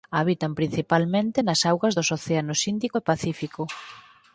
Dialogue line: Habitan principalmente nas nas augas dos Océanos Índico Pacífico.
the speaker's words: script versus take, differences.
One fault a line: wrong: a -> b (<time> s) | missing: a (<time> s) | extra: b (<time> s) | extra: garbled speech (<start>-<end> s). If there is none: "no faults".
missing: nas (1.6 s)
extra: e (3.0 s)